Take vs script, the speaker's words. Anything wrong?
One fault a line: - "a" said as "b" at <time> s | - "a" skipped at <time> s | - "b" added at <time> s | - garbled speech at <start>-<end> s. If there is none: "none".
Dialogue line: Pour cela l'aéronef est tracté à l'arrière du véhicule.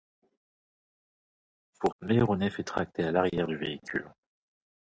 - "cela" skipped at 1.9 s